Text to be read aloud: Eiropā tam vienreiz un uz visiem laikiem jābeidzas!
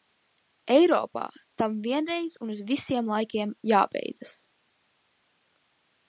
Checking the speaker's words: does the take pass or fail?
pass